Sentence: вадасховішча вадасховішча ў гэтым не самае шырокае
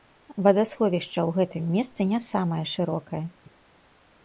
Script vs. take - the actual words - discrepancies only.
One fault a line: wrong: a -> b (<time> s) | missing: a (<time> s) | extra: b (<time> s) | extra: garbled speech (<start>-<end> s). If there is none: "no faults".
missing: вадасховішча (1.2 s)
extra: месцы (1.8 s)